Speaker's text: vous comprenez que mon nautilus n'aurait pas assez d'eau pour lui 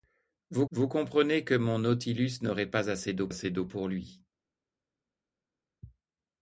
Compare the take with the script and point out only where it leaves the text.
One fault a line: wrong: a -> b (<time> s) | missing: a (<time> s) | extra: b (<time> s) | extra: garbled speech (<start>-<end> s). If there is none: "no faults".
extra: vous (0.7 s)
extra: assez d'eau (3.3 s)